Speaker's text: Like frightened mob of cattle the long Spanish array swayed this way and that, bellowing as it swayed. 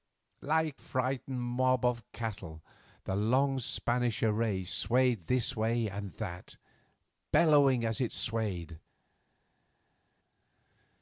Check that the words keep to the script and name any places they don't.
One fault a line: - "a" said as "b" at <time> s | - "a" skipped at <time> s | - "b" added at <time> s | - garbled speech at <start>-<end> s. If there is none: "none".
none